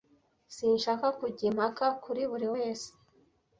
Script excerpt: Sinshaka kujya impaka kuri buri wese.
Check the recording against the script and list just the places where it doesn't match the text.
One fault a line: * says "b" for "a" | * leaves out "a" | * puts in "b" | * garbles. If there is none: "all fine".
all fine